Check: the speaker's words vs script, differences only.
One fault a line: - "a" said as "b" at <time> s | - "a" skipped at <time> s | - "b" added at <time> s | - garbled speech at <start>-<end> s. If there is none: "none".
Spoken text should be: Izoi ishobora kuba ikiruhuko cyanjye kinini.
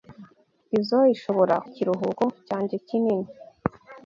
- "kuba" skipped at 1.6 s